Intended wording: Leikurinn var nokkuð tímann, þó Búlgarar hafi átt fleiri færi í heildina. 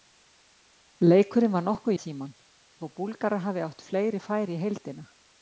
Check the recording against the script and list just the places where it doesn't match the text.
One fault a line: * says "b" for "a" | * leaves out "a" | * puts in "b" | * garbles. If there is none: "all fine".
all fine